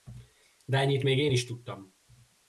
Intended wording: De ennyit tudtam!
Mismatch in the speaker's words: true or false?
true